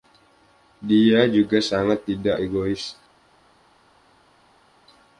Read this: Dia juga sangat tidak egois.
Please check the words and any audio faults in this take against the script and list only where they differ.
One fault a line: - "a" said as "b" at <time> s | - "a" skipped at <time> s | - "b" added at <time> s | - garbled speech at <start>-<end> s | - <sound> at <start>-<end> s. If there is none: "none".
none